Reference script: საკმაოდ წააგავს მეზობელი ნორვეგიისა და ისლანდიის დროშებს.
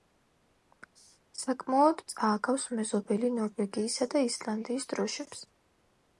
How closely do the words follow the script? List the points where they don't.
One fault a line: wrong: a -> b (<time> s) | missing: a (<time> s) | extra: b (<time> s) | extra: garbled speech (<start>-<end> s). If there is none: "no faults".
no faults